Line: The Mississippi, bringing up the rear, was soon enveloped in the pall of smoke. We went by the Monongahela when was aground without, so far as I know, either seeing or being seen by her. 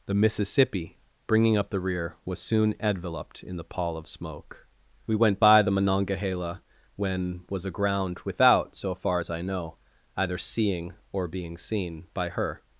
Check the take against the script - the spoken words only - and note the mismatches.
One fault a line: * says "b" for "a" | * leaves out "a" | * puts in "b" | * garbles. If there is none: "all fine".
all fine